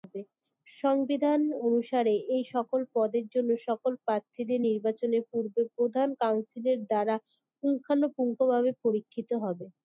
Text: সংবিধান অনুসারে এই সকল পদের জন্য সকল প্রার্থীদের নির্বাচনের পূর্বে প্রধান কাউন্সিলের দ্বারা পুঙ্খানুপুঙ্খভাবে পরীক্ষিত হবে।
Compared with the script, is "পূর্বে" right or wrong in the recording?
right